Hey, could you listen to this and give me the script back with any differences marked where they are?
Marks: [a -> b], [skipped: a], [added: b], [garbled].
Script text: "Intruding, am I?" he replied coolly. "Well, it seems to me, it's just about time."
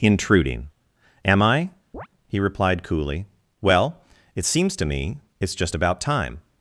"Intruding, am I?" he replied coolly. "Well, it seems to me, it's just about time."